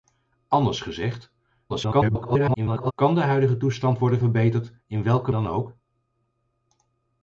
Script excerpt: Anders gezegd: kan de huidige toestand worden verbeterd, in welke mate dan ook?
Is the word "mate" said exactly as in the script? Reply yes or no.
no